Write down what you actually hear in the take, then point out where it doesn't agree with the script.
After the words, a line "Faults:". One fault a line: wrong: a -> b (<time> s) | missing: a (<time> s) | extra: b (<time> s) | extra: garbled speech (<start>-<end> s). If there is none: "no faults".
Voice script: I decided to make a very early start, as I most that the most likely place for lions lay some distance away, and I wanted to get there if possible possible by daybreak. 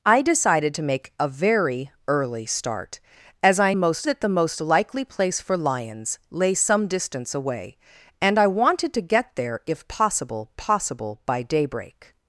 I decided to make a very early start, as I most that the most likely place for lions lay some distance away, and I wanted to get there if possible possible by daybreak.
Faults:
no faults